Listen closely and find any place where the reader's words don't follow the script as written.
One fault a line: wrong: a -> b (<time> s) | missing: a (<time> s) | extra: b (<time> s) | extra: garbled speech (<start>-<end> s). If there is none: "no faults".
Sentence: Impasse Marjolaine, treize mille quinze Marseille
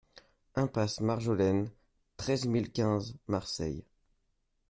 no faults